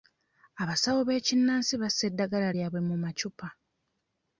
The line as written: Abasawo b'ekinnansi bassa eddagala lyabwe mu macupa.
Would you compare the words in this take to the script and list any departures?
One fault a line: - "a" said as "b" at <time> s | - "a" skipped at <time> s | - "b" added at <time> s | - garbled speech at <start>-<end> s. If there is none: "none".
none